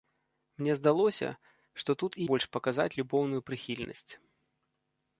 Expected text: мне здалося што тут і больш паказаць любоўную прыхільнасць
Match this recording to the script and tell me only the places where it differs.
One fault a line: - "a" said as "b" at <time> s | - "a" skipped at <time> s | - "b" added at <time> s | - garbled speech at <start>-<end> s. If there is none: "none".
none